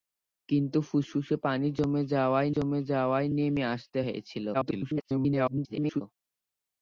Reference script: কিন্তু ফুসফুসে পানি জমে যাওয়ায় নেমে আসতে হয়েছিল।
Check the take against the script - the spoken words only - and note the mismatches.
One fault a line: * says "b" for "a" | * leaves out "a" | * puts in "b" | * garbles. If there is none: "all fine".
* puts in "জমে যাওয়ায়"
* garbles